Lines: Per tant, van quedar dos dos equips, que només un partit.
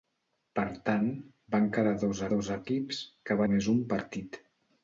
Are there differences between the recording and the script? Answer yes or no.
no